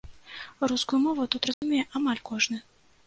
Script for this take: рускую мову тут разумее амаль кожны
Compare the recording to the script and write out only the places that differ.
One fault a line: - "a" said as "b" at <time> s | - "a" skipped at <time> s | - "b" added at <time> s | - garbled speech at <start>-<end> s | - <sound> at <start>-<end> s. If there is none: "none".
- dropout at 1.5-1.6 s